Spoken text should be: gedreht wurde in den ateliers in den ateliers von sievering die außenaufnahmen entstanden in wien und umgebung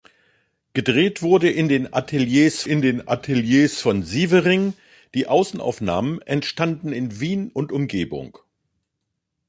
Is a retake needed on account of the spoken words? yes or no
no